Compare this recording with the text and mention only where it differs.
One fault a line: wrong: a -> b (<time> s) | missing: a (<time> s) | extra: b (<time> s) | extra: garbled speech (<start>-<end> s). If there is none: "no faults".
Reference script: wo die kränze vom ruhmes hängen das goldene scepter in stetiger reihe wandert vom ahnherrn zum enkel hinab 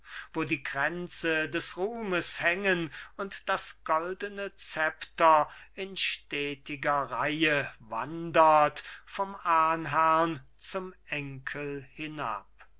wrong: vom -> des (1.5 s)
extra: und (3.2 s)